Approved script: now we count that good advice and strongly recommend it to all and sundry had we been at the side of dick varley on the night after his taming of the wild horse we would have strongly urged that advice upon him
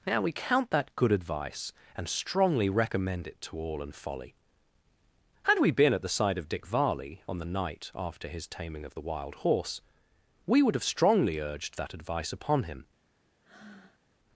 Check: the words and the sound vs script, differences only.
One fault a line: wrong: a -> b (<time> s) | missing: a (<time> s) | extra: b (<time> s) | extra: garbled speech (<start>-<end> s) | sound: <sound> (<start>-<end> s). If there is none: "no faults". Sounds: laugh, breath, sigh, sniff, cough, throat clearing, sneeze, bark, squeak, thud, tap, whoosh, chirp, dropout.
wrong: sundry -> folly (3.9 s)
sound: breath (13.4-14.0 s)